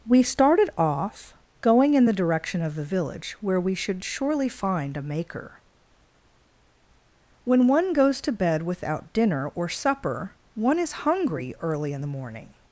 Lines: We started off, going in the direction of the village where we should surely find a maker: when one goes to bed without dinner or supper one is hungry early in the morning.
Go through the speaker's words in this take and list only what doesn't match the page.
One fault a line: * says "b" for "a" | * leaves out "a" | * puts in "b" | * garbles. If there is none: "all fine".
all fine